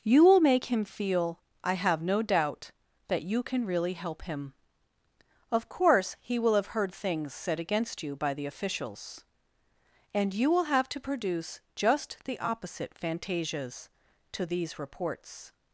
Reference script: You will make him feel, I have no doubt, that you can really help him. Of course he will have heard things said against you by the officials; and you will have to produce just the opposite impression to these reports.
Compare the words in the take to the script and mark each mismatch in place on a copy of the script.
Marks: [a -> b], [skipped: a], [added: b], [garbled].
You will make him feel, I have no doubt, that you can really help him. Of course he will have heard things said against you by the officials; and you will have to produce just the opposite [impression -> fantasias] to these reports.